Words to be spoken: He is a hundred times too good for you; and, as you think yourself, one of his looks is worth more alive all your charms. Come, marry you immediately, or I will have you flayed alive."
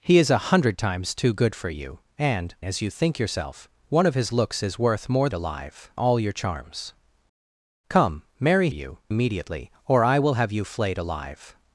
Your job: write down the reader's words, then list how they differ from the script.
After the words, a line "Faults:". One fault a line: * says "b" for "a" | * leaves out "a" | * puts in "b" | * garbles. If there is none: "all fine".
He is a hundred times too good for you; and, as you think yourself, one of his looks is worth more alive all your charms. Come, marry you immediately, or I will have you flayed alive."
Faults:
all fine